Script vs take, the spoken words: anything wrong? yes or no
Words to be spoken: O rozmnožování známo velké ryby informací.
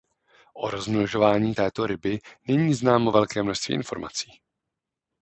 yes